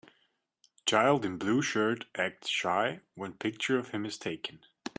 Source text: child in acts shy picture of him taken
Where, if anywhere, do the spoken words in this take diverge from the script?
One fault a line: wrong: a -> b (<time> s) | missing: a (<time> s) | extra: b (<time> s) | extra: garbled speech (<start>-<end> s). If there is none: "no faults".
extra: blue shirt (1.4 s)
extra: when (3.1 s)
extra: is (4.0 s)